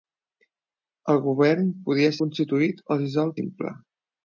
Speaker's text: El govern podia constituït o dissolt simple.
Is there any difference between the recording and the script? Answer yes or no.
no